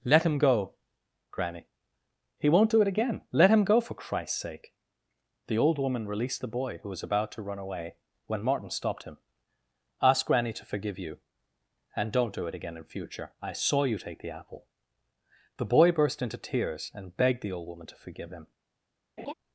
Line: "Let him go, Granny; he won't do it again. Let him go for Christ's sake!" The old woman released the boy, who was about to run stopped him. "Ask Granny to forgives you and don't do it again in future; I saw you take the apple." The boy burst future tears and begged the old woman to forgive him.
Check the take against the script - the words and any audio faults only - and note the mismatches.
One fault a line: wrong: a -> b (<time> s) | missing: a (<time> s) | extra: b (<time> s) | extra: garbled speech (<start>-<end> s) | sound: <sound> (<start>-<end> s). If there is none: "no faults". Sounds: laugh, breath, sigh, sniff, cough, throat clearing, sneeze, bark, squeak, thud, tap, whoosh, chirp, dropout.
extra: away when Martin (7.6 s)
wrong: forgives -> forgive (10.6 s)
wrong: future -> into (16.2 s)
sound: laugh (19.2-19.3 s)